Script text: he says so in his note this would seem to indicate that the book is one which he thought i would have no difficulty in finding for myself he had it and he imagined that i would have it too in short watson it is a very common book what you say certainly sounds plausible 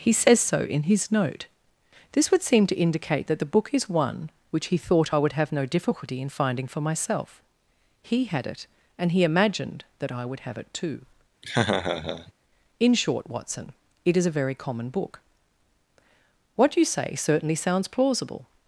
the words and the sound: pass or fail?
fail